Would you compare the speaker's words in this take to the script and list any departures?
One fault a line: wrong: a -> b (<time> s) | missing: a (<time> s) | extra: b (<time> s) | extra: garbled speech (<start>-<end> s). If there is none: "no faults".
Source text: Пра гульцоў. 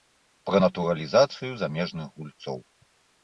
extra: натуралізацыю замежных (0.6 s)